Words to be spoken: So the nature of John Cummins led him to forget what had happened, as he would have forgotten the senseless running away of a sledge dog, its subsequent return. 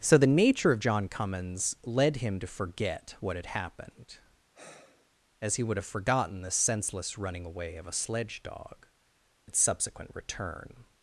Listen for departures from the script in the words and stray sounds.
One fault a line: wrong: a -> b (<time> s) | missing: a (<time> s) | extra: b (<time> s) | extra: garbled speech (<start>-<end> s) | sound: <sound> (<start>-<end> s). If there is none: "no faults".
sound: sigh (4.5-5.1 s)